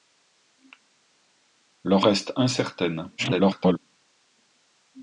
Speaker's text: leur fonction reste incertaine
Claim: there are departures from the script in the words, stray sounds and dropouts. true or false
true